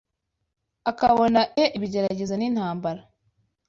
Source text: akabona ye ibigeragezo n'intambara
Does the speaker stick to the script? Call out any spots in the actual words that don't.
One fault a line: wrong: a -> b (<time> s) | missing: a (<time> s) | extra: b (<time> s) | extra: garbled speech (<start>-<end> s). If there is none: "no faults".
no faults